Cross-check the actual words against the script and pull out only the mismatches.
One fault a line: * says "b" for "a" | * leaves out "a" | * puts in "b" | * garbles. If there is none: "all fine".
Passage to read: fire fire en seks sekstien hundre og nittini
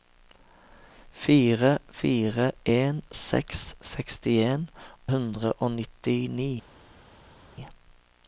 all fine